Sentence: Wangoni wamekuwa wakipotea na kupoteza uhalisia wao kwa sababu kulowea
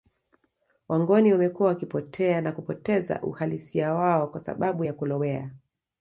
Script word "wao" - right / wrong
right